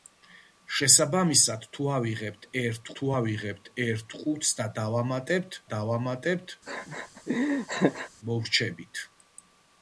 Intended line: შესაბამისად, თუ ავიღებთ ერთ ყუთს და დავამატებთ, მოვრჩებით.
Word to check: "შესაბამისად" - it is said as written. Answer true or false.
true